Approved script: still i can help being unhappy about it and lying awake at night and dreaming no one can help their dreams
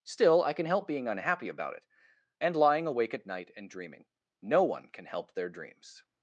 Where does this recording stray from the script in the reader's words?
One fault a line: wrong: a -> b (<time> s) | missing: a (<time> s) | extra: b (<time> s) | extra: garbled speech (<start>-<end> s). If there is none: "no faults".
no faults